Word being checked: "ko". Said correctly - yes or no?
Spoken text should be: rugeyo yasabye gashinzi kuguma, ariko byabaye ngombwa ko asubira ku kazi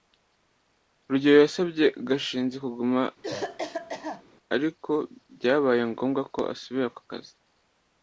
yes